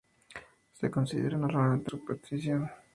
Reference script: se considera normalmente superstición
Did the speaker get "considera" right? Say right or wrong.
right